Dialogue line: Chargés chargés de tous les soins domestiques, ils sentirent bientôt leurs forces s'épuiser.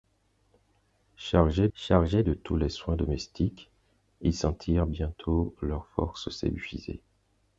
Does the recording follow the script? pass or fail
pass